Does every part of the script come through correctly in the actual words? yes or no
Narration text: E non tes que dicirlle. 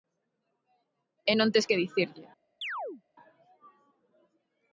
yes